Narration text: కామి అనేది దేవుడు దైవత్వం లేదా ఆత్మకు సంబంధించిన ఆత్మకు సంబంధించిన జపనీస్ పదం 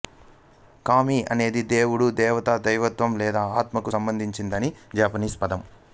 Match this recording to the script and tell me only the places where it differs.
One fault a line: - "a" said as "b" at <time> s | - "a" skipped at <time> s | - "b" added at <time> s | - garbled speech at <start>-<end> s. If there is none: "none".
- "దేవత" added at 2.1 s
- "ఆత్మకు సంబంధించిన" skipped at 4.7 s